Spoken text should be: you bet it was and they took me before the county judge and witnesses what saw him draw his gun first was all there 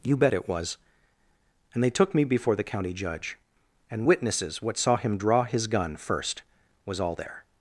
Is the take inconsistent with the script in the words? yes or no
no